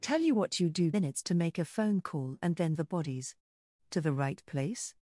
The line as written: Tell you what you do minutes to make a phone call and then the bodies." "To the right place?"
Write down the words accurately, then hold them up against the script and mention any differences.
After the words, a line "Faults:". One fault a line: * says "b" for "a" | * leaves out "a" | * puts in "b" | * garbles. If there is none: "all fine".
Tell you what you do minutes to make a phone call and then the bodies." "To the right place?"
Faults:
all fine